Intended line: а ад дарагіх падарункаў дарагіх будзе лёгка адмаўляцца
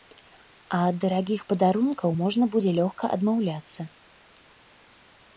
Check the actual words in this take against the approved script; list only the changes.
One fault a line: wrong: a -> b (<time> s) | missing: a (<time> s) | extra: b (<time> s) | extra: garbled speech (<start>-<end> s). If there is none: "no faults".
wrong: дарагіх -> можна (2.2 s)